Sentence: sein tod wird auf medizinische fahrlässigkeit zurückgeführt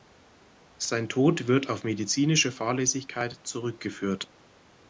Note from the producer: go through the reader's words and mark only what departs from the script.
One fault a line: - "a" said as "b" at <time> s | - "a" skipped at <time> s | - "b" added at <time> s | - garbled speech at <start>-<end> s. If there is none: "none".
none